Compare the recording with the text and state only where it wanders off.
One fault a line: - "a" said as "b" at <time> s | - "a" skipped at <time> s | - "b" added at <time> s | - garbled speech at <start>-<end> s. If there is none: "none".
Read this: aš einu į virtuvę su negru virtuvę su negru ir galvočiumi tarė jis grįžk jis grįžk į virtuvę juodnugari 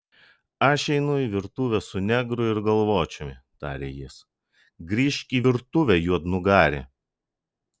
- "virtuvę su negru" skipped at 2.5 s
- "jis grįžk" skipped at 5.4 s